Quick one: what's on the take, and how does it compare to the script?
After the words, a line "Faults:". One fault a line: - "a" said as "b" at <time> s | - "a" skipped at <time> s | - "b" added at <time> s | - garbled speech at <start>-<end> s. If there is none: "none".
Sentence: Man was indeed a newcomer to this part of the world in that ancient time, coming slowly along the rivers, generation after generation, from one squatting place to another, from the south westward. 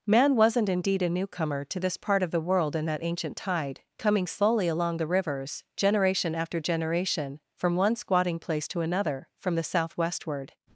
Man wasn't indeed a newcomer to this part of the world in that ancient tide, coming slowly along the rivers, generation after generation, from one squatting place to another, from the south westward.
Faults:
- "was" said as "wasn't" at 0.3 s
- "time" said as "tide" at 3.4 s